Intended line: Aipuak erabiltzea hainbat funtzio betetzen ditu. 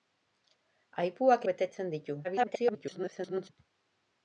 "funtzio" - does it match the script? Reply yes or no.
no